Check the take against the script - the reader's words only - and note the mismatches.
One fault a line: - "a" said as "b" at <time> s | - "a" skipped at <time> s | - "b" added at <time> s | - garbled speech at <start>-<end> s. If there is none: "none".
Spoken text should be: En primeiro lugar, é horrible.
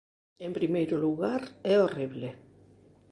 none